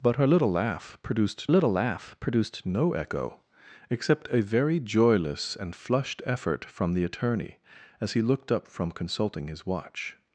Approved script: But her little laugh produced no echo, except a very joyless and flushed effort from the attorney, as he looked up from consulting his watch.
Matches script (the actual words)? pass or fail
fail